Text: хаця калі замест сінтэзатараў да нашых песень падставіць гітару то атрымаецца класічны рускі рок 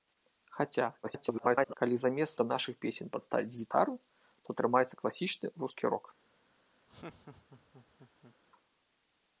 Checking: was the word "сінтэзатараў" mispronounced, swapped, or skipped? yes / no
yes